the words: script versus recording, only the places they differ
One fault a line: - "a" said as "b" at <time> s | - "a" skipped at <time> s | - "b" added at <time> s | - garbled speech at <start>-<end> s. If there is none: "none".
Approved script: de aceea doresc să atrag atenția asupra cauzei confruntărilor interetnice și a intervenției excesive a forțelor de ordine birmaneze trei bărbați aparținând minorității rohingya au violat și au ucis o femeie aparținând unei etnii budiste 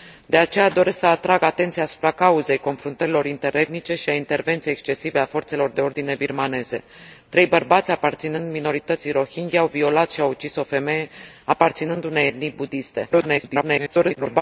- garbled speech at 13.1-14.4 s